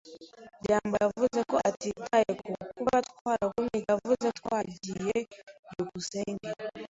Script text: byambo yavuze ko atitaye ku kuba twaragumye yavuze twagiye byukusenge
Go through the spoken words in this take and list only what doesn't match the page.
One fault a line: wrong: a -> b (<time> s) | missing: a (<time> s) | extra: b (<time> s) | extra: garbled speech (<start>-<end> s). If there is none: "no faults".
no faults